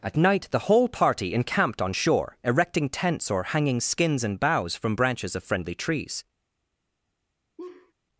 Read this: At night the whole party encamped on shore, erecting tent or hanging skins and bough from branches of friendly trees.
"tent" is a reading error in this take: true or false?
true